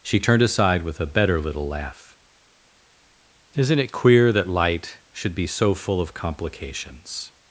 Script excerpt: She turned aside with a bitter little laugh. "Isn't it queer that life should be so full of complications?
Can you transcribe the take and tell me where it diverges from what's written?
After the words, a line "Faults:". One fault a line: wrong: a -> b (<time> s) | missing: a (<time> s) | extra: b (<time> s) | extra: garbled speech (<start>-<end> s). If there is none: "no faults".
She turned aside with a better little laugh. "Isn't it queer that light should be so full of complications?
Faults:
wrong: bitter -> better (1.1 s)
wrong: life -> light (4.5 s)